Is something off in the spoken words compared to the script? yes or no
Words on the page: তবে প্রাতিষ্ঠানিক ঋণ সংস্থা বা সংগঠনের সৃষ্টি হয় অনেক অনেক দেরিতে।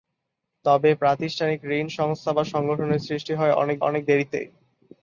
no